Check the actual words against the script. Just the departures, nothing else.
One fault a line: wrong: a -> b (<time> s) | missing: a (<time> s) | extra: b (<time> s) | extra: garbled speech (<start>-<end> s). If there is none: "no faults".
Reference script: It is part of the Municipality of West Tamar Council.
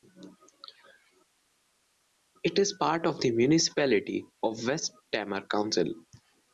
no faults